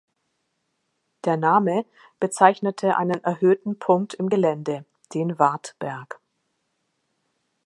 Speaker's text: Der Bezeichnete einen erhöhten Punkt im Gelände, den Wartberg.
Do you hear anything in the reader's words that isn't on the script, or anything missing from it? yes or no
yes